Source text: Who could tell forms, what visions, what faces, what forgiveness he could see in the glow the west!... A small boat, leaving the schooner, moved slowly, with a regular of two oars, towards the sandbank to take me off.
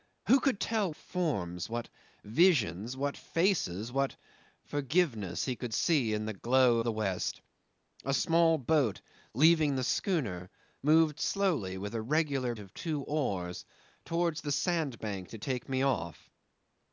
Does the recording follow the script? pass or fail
pass